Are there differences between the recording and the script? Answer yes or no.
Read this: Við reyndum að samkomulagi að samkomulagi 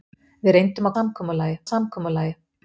no